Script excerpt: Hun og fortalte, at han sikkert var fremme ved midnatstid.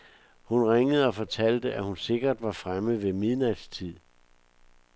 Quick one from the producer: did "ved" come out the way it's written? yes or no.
yes